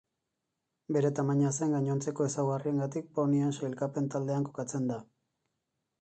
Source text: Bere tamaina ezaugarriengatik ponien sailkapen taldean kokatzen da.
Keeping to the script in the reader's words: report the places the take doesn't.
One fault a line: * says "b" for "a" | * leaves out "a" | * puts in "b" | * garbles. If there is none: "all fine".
* puts in "zein gainontzeko"